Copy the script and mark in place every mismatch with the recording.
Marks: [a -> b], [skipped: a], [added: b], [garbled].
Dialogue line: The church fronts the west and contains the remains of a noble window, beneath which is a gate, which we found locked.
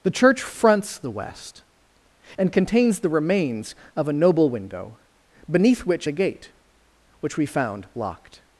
The church fronts the west and contains the remains of a noble window, beneath which [skipped: is] a gate, which we found locked.